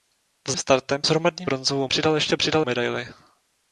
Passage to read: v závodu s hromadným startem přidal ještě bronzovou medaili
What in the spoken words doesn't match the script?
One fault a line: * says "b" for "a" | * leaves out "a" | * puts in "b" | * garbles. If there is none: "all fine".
* says "startem" for "závodu"
* says "bronzovou" for "startem"
* says "přidal" for "bronzovou"